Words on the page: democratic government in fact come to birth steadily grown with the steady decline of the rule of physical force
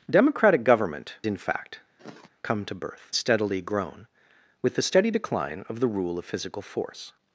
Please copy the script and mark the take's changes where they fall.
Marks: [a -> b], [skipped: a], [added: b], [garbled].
democratic government in fact come to birth steadily grown with the steady decline of the rule of physical force